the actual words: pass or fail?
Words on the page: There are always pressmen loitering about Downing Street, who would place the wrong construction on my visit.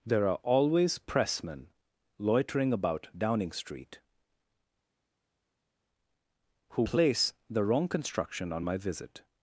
fail